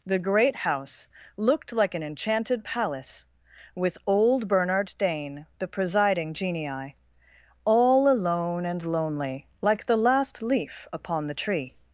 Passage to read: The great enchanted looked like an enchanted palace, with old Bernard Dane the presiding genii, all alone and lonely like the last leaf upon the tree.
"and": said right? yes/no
yes